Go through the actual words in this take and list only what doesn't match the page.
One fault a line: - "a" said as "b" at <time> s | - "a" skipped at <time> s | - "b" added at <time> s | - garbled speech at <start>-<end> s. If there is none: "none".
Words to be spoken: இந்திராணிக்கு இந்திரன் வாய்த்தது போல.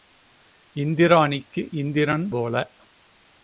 - "வாய்த்தது" skipped at 2.3 s